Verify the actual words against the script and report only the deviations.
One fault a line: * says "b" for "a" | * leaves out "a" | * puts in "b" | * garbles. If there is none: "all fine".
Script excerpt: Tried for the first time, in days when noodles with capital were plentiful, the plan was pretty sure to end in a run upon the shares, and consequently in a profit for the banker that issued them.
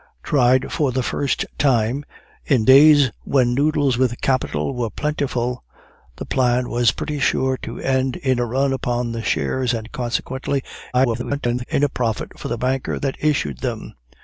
* garbles